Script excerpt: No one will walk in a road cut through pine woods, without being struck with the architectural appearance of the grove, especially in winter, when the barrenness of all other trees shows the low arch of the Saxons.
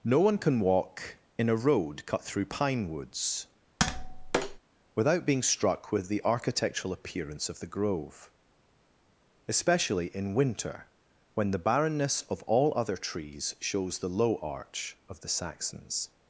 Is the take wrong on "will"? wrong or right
wrong